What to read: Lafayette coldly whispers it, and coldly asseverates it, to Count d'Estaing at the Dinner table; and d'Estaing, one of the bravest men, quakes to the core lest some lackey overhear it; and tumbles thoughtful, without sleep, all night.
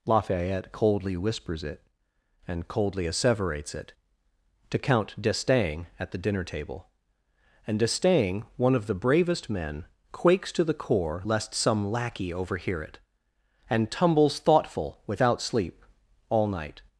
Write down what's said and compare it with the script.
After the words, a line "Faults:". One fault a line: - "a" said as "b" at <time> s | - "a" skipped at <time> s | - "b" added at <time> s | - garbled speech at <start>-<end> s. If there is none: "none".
Lafayette coldly whispers it, and coldly asseverates it, to Count d'Estaing at the Dinner table; and d'Estaing, one of the bravest men, quakes to the core lest some lackey overhear it; and tumbles thoughtful, without sleep, all night.
Faults:
none